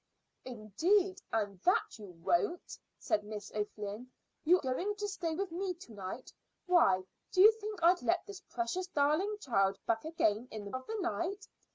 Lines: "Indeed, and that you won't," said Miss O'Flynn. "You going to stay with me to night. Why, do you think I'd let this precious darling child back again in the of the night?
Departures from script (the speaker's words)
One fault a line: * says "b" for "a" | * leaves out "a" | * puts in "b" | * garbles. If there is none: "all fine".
all fine